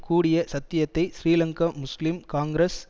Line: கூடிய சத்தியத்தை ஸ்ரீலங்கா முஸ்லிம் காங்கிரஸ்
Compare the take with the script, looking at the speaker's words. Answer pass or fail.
pass